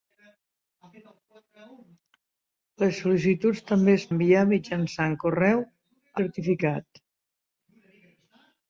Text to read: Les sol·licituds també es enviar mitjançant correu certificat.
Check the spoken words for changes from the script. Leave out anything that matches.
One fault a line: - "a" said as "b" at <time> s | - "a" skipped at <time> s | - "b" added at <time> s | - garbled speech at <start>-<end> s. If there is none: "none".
none